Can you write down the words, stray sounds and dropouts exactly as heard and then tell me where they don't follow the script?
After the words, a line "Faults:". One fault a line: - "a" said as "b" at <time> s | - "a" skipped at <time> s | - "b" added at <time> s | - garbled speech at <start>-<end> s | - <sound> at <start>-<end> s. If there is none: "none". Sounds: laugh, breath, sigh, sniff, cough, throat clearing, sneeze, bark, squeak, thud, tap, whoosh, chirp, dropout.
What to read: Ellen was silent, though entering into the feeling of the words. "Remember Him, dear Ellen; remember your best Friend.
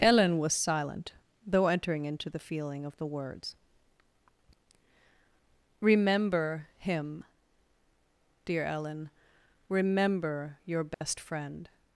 Ellen was silent, though entering into the feeling of the words. "Remember Him, dear Ellen; remember your best Friend.
Faults:
- dropout at 10.9-11.0 s